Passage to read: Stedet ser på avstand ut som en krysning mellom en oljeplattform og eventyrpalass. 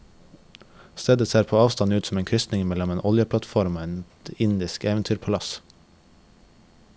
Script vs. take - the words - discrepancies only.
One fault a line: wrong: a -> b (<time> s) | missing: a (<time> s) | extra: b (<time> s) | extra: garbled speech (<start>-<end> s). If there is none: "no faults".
extra: et indisk (3.9 s)